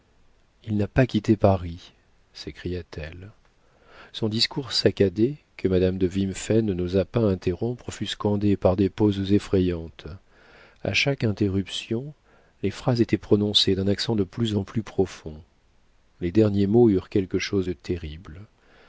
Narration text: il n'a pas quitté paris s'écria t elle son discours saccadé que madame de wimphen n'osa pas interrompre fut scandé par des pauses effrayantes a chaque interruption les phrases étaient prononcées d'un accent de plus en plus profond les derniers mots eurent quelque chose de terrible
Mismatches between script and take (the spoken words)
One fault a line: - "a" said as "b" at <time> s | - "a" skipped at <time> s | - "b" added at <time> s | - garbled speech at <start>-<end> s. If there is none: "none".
none